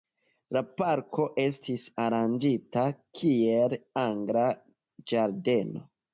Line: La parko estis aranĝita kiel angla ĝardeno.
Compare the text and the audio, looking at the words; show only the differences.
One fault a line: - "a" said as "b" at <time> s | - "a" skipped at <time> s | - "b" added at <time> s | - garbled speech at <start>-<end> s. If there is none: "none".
none